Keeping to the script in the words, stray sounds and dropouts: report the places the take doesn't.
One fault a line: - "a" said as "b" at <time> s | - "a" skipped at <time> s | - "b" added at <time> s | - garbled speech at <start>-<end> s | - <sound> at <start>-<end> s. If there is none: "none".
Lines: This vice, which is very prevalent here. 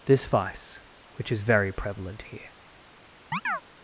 - chirp at 3.3-3.6 s